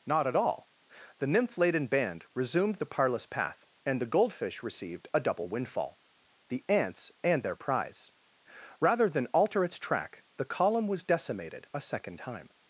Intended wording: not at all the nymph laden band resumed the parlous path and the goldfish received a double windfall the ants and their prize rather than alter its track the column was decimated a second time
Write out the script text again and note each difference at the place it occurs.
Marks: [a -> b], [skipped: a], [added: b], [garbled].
not at all the nymph laden band resumed the parlous path and the goldfish received a double windfall the ants and their prize rather than alter its track the column was decimated a second time